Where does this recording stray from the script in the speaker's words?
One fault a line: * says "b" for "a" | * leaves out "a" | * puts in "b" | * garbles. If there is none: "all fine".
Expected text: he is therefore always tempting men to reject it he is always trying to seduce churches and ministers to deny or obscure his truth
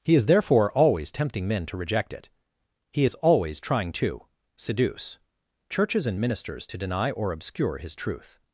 all fine